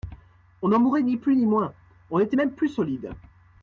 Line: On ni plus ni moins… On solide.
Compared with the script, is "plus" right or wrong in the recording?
right